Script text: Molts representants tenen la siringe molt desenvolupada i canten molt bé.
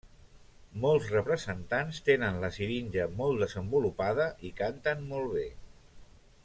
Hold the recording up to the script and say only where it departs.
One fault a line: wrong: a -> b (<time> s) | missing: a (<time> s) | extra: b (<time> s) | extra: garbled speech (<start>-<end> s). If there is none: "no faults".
no faults